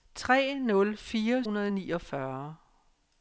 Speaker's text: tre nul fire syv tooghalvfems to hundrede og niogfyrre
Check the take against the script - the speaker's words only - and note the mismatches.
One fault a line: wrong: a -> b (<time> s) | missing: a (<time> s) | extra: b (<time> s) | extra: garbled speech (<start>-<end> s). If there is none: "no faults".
missing: syv tooghalvfems to (1.4 s)